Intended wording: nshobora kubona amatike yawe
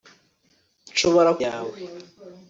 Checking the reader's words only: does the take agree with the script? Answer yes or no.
no